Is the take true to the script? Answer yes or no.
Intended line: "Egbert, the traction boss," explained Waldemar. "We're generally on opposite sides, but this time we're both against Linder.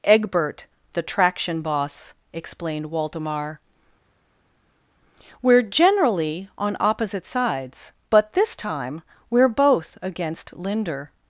yes